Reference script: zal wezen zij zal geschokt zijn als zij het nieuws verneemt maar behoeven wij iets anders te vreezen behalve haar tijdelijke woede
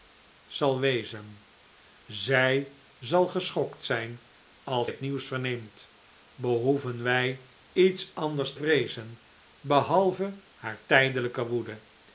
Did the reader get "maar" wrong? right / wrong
wrong